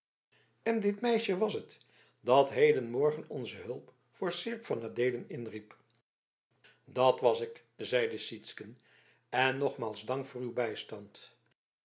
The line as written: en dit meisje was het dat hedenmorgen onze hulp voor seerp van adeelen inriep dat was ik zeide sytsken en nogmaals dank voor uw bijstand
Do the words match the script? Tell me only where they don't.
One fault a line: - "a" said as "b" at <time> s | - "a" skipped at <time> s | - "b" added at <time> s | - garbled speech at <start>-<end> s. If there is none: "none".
none